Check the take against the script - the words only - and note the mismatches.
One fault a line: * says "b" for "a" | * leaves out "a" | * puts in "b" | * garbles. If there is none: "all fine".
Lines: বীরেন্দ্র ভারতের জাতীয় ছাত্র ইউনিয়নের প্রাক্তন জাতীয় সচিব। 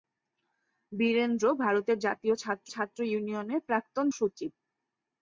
* puts in "ছাত্র"
* leaves out "জাতীয়"